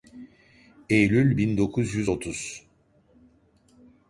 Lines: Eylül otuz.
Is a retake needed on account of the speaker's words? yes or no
yes